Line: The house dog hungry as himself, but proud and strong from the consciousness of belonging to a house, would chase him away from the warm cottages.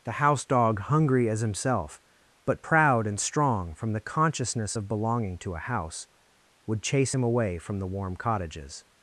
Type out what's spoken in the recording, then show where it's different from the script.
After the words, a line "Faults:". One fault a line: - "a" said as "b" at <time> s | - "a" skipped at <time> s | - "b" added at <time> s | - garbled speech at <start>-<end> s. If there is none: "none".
The house dog hungry as himself, but proud and strong from the consciousness of belonging to a house, would chase him away from the warm cottages.
Faults:
none